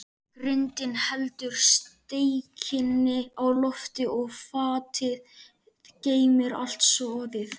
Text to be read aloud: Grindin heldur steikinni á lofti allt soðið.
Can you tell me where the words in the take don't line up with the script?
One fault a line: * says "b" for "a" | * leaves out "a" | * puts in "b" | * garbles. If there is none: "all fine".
* puts in "og fatið geymir"